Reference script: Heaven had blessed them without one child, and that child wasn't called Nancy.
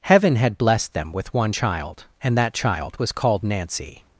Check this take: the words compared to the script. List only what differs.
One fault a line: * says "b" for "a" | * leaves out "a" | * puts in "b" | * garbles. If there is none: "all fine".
* says "with" for "without"
* says "was" for "wasn't"